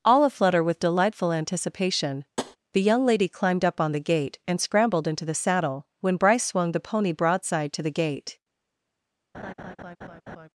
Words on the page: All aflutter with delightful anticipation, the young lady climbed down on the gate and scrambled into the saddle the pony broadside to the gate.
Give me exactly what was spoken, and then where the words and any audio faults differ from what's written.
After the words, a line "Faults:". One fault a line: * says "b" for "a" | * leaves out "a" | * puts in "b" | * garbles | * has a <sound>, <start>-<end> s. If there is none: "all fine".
All aflutter with delightful anticipation, the young lady climbed up on the gate and scrambled into the saddle when Bryce swung the pony broadside to the gate.
Faults:
* has a tap, 2.4-2.6 s
* says "up" for "down"
* puts in "when Bryce swung"
* has a laugh, 9.3-10.5 s